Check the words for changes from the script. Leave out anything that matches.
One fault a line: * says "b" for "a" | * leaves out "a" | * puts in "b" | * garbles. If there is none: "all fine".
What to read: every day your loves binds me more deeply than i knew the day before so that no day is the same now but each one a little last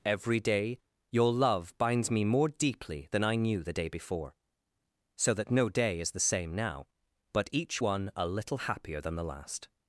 * says "love" for "loves"
* puts in "happier than the"